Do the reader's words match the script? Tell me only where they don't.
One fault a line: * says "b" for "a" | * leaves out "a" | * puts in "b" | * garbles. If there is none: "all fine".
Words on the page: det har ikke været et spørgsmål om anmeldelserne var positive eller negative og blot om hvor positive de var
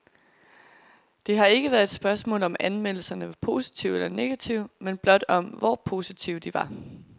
* says "men" for "og"